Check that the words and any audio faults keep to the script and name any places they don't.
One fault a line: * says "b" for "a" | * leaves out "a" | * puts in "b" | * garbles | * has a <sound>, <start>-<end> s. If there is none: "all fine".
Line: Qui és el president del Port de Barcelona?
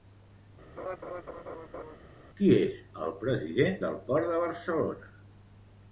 * has a laugh, 0.8-2.0 s